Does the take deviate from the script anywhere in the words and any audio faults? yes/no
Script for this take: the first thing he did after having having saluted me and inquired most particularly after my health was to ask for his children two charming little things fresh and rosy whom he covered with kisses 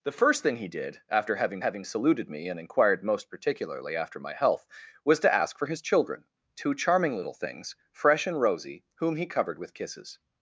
no